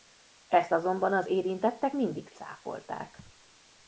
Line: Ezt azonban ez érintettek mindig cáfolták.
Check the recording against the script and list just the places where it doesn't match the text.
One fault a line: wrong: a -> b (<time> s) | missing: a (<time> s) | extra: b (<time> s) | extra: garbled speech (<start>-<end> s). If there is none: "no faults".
wrong: ez -> az (1.1 s)